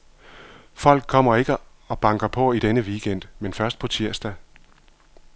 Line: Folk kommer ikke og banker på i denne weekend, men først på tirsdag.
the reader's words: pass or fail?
pass